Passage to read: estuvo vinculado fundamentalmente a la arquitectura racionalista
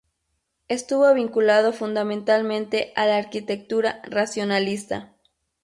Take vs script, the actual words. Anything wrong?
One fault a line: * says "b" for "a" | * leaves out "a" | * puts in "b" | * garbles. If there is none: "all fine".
all fine